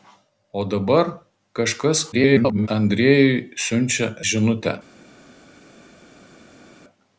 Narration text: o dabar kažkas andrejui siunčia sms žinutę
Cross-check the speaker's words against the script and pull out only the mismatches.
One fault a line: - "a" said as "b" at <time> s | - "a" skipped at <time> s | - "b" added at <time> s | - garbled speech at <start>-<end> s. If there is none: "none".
- garbled speech at 2.1-2.7 s
- "sms" skipped at 4.1 s